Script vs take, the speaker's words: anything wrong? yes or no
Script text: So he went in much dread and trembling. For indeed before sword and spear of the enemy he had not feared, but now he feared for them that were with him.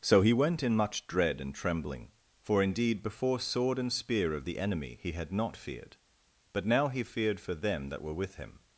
no